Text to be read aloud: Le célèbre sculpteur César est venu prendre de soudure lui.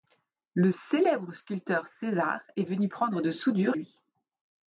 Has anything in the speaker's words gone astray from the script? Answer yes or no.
no